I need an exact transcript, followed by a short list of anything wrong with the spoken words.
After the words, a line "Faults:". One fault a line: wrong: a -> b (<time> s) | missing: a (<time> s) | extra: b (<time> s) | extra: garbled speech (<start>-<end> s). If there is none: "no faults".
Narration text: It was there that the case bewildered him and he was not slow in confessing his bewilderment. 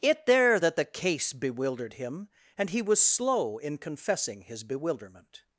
It there that the case bewildered him and he was slow in confessing his bewilderment.
Faults:
missing: was (0.2 s)
missing: not (3.0 s)